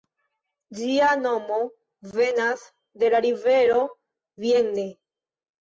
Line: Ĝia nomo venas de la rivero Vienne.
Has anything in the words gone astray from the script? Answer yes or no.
no